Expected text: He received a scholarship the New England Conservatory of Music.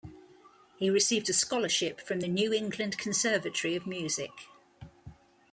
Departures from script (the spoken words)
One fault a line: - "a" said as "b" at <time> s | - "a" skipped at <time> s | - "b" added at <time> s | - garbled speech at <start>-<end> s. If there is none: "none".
- "from" added at 2.0 s